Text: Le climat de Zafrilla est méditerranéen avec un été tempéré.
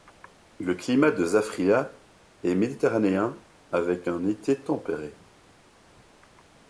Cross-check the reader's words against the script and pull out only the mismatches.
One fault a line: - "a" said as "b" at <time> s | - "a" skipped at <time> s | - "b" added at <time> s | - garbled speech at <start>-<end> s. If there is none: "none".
none